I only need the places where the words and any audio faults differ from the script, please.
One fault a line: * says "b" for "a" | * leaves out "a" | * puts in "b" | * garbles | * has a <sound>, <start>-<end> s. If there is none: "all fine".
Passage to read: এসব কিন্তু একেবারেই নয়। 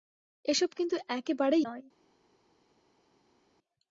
all fine